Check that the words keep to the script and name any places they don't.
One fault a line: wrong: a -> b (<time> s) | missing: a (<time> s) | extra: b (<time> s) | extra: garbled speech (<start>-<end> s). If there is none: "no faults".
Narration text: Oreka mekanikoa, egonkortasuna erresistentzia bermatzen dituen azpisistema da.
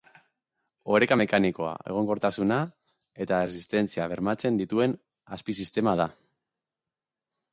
extra: eta (3.2 s)